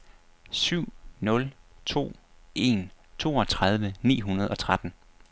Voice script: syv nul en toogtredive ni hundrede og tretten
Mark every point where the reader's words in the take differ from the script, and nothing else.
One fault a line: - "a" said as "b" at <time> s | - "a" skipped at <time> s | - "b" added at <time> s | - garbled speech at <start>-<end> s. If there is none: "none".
- "to" added at 1.9 s